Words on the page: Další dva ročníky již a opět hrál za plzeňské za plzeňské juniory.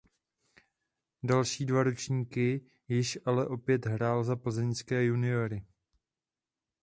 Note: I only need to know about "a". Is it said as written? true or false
false